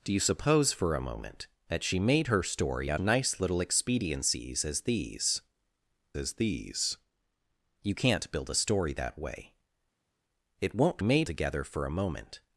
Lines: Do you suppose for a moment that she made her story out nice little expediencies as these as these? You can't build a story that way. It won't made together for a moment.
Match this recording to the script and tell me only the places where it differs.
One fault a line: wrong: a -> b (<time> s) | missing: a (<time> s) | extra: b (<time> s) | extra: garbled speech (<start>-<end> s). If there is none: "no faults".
no faults